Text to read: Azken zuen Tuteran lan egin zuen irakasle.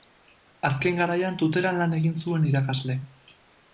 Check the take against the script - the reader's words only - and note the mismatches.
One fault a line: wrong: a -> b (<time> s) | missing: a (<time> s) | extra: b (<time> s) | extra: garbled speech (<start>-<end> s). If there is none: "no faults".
wrong: zuen -> garaian (1.0 s)